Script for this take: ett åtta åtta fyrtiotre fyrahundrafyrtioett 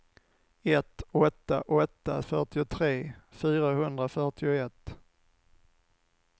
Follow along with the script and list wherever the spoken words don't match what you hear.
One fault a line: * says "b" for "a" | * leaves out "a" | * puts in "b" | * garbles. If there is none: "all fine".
all fine